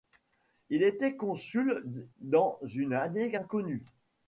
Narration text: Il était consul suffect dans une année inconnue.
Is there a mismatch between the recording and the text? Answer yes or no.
yes